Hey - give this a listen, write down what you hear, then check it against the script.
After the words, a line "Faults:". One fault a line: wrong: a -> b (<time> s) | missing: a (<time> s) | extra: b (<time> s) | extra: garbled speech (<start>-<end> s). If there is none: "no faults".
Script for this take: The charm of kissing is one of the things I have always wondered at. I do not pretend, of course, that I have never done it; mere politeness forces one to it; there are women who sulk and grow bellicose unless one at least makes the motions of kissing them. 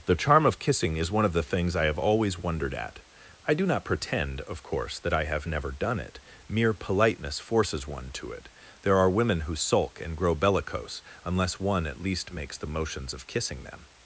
The charm of kissing is one of the things I have always wondered at. I do not pretend, of course, that I have never done it; mere politeness forces one to it; there are women who sulk and grow bellicose unless one at least makes the motions of kissing them.
Faults:
no faults